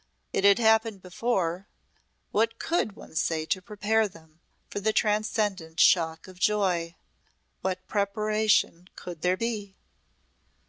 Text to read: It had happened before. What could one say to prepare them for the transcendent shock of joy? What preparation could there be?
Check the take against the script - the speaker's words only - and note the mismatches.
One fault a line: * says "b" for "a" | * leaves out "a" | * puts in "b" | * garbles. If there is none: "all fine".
all fine